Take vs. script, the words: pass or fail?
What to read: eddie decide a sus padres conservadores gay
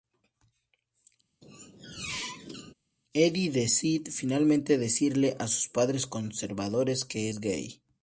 fail